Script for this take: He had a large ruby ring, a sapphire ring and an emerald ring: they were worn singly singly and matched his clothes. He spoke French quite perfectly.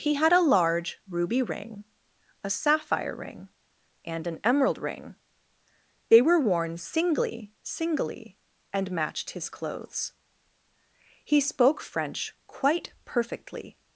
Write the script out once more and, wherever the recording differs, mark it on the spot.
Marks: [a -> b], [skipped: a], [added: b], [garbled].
He had a large ruby ring, a sapphire ring and an emerald ring: they were worn singly singly and matched his clothes. He spoke French quite perfectly.